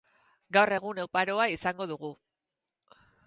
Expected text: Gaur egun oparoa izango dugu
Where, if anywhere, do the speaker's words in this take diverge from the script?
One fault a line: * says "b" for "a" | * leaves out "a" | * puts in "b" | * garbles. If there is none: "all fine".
all fine